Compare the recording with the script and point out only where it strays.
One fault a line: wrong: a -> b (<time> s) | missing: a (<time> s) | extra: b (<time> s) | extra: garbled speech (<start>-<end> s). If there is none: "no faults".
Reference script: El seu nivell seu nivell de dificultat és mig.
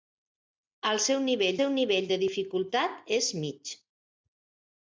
no faults